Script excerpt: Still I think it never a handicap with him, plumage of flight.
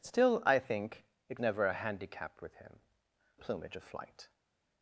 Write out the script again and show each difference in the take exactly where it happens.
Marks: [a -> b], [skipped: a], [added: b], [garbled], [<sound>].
Still I think it never a handicap with him, plumage of flight.